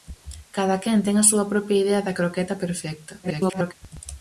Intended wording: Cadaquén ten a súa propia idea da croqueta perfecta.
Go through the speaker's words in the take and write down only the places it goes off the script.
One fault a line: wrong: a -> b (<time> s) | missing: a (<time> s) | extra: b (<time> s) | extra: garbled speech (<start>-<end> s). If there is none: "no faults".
extra: garbled speech (3.2-3.7 s)